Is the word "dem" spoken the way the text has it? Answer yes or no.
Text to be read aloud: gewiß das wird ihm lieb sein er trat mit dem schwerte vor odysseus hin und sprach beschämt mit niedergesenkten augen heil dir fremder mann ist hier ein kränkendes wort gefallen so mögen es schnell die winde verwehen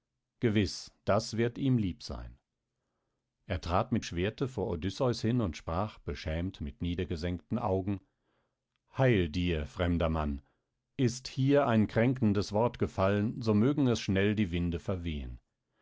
no